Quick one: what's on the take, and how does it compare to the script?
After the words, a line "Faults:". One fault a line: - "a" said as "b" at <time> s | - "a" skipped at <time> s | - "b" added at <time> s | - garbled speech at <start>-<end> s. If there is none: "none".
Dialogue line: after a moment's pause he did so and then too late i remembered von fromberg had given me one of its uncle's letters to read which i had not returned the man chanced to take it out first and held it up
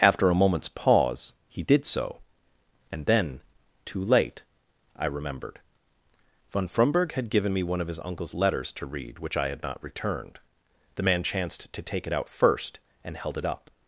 after a moment's pause he did so and then too late i remembered von fromberg had given me one of his uncle's letters to read which i had not returned the man chanced to take it out first and held it up
Faults:
- "its" said as "his" at 7.9 s